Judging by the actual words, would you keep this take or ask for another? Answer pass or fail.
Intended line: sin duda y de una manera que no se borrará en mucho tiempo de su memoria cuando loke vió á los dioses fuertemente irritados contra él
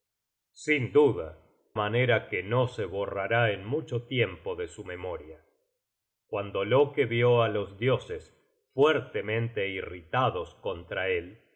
fail